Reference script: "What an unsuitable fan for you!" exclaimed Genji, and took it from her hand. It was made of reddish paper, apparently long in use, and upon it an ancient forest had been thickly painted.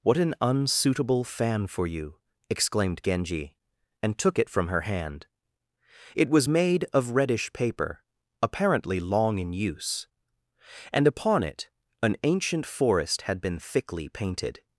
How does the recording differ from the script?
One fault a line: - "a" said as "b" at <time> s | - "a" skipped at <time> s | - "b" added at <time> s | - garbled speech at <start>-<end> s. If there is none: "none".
none